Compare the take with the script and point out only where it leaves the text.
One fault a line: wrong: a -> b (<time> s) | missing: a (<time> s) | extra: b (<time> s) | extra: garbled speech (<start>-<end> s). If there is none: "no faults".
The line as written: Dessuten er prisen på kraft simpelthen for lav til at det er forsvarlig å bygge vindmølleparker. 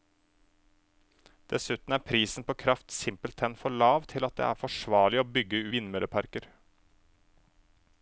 no faults